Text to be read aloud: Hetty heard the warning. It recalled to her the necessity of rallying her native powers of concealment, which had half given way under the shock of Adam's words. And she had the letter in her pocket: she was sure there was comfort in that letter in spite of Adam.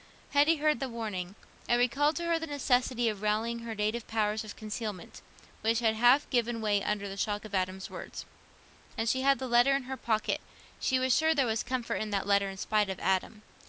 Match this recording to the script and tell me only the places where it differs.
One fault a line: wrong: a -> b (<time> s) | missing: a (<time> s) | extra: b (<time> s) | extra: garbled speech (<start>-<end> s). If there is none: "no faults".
no faults